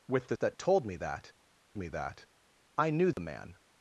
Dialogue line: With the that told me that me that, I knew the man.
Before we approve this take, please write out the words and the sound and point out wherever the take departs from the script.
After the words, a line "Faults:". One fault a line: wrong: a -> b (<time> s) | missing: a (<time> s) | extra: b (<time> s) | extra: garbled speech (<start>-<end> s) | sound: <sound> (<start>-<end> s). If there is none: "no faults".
With the that told me that me that, I knew the man.
Faults:
sound: dropout (3.1-3.2 s)